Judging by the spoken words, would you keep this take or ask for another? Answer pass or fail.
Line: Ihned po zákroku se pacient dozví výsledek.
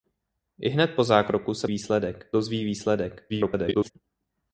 fail